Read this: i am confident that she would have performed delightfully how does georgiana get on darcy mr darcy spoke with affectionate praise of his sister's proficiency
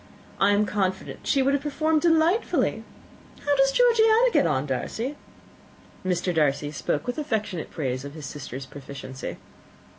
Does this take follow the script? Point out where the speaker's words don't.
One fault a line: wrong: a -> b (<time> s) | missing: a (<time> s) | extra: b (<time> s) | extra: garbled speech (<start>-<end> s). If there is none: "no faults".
missing: that (1.2 s)